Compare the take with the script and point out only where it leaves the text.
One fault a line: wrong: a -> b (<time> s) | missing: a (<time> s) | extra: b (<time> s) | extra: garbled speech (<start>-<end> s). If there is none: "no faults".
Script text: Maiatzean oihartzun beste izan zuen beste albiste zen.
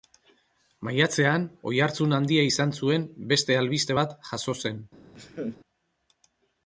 wrong: beste -> handia (2.2 s)
extra: bat jazo (4.0 s)